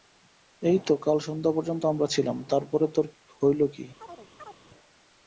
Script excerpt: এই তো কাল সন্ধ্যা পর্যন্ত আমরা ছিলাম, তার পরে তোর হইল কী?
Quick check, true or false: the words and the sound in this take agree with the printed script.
false